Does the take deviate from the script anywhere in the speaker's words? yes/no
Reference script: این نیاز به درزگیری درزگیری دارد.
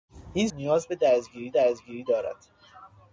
no